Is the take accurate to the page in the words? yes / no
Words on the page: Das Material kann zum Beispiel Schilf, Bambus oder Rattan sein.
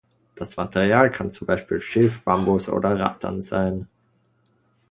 yes